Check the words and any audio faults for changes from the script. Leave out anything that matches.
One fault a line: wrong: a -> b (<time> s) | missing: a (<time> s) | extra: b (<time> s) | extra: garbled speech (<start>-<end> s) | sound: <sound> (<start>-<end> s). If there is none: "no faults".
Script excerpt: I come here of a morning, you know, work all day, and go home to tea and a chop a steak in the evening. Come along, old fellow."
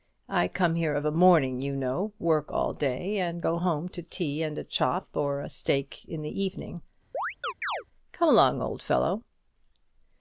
extra: or (5.1 s)
sound: chirp (7.1-7.8 s)